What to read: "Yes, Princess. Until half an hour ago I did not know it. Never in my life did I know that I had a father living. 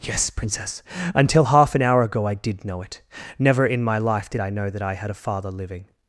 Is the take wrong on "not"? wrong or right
wrong